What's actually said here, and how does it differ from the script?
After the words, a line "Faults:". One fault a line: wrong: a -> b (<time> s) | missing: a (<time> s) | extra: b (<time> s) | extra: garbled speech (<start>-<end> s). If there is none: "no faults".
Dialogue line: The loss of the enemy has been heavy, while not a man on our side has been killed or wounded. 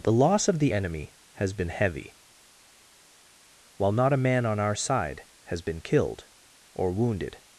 The loss of the enemy has been heavy, while not a man on our side has been killed or wounded.
Faults:
no faults